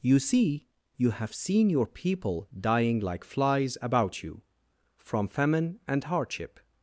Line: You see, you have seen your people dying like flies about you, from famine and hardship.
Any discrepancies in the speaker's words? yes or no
no